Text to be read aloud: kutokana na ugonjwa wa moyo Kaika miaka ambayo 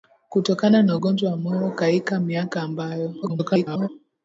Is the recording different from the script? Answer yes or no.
yes